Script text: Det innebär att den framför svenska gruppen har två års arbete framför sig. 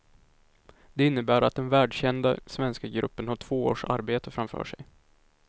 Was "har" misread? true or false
false